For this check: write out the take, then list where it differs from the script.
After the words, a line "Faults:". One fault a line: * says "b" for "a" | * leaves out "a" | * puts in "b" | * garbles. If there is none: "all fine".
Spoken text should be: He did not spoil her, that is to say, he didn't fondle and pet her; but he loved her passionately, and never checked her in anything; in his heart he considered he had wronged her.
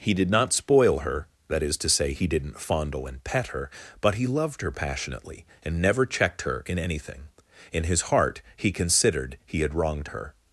He did not spoil her, that is to say, he didn't fondle and pet her; but he loved her passionately, and never checked her in anything; in his heart he considered he had wronged her.
Faults:
all fine